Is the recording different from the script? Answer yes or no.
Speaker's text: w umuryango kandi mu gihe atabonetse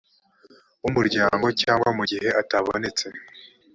yes